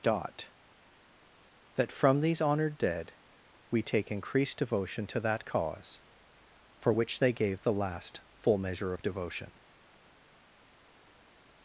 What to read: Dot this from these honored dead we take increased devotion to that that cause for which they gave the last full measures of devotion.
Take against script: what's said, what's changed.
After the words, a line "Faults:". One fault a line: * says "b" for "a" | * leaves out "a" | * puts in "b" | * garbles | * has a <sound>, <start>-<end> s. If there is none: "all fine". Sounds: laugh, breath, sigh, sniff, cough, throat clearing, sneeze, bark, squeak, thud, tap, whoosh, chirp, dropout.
Dot that from these honored dead we take increased devotion to that cause for which they gave the last full measure of devotion.
Faults:
* says "that" for "this"
* leaves out "that"
* says "measure" for "measures"